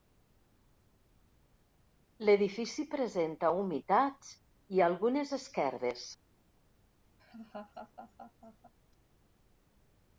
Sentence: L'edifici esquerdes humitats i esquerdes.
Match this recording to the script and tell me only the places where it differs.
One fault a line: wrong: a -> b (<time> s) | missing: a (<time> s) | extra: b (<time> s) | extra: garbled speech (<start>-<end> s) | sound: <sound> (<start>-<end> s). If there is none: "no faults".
wrong: esquerdes -> presenta (3.0 s)
extra: algunes (4.9 s)
sound: laugh (7.2-8.7 s)